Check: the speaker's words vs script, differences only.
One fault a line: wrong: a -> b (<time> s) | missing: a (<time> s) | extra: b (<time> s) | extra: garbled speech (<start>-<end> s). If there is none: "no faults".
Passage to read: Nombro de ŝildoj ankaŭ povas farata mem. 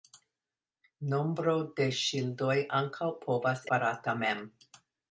no faults